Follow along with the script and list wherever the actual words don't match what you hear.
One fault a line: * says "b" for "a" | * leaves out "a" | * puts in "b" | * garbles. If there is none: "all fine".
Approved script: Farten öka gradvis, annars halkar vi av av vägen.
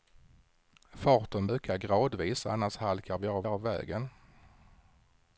all fine